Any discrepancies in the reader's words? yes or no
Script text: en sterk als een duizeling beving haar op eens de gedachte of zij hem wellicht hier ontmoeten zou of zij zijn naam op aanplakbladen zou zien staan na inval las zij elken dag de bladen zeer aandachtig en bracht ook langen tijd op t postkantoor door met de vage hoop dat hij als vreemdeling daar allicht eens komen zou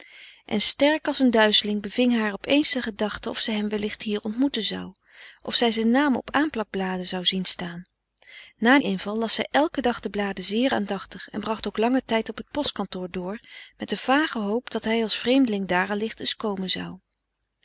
no